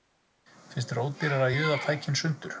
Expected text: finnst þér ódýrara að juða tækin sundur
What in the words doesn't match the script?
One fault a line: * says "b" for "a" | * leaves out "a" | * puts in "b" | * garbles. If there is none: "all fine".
all fine